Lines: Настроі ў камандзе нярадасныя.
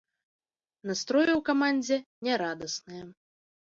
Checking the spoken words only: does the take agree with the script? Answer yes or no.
yes